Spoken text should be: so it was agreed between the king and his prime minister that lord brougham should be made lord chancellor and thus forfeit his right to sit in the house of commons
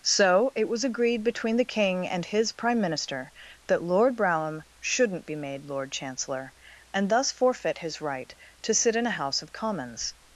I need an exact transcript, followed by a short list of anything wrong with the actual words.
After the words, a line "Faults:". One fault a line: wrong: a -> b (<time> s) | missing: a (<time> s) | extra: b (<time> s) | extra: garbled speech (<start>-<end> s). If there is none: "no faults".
so it was agreed between the king and his prime minister that lord brougham shouldn't be made lord chancellor and thus forfeit his right to sit in a house of commons
Faults:
wrong: should -> shouldn't (4.8 s)
wrong: the -> a (9.1 s)